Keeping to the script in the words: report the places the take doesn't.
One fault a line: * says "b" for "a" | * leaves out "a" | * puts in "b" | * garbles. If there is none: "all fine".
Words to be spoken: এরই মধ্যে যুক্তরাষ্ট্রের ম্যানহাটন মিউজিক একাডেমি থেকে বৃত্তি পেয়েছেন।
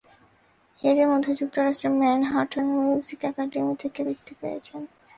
all fine